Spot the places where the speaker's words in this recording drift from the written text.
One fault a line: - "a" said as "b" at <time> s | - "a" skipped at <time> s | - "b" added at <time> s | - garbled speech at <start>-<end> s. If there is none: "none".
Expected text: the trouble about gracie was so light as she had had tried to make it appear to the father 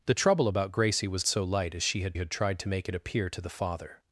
none